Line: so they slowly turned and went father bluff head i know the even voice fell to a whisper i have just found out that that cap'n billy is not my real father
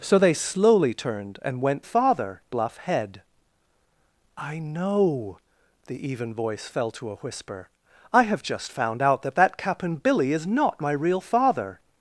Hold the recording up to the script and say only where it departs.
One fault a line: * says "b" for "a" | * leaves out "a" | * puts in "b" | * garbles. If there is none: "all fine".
all fine